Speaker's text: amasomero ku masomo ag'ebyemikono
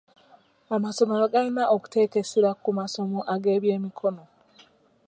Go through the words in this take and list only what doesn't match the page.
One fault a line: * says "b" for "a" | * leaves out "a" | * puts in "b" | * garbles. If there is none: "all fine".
* puts in "galina okuteeka essira"